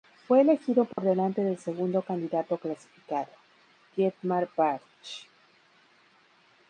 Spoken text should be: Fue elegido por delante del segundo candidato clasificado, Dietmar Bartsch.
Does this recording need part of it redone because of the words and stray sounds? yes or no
yes